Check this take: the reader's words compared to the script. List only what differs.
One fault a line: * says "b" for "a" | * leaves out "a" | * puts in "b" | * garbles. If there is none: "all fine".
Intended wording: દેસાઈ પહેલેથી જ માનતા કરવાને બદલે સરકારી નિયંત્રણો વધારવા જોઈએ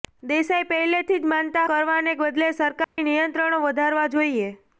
all fine